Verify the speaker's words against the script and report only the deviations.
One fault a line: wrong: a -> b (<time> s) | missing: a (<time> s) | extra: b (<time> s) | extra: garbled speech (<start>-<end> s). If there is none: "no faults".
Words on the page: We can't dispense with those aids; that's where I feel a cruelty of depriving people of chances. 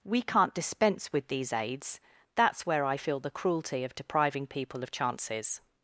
wrong: those -> these (1.3 s)
wrong: a -> the (3.2 s)